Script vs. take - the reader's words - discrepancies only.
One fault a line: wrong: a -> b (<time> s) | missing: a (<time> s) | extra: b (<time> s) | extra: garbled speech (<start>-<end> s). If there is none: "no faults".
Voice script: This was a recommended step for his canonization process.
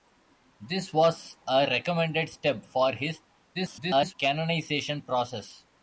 extra: garbled speech (3.5-4.1 s)